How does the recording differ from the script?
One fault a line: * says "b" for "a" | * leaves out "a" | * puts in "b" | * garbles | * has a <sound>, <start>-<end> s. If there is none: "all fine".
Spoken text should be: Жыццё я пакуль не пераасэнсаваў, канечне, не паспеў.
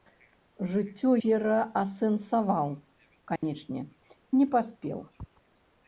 * leaves out "я пакуль не"
* has a dropout, 3.4-3.4 s